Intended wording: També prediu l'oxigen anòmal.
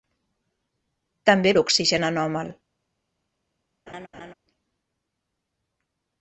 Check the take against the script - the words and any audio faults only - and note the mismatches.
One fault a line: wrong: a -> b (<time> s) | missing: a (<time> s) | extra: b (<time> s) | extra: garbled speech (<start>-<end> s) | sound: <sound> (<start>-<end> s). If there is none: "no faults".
missing: prediu (1.5 s)
sound: laugh (3.9-4.3 s)